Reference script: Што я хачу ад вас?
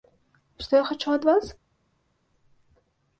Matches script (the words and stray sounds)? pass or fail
pass